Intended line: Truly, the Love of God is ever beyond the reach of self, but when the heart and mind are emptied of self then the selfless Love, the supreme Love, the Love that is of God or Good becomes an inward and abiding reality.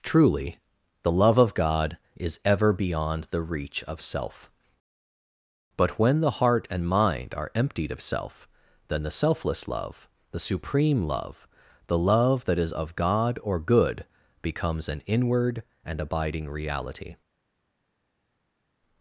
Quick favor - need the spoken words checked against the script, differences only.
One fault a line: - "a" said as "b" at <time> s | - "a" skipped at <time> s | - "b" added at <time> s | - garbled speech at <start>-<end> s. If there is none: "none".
none